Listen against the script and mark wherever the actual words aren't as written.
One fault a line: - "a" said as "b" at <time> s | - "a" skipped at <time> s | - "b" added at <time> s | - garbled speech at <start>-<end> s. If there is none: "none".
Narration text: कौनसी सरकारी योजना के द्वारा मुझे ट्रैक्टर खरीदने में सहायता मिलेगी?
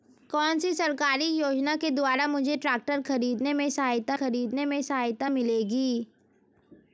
- "खरीदने में सहायता" added at 4.1 s